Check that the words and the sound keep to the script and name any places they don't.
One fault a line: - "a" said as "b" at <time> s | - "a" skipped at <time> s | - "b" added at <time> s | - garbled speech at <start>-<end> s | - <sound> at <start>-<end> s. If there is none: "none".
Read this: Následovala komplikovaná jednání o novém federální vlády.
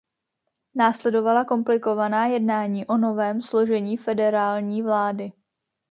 - "složení" added at 3.4 s